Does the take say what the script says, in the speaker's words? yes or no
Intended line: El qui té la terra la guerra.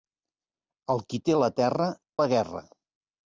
yes